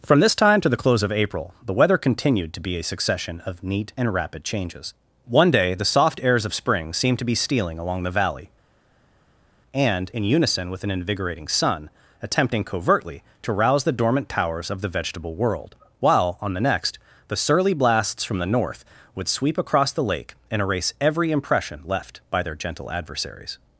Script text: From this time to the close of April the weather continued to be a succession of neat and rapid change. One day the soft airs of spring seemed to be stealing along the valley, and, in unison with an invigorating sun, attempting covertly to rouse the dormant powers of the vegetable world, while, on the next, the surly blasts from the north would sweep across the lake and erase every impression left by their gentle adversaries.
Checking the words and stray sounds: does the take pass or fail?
fail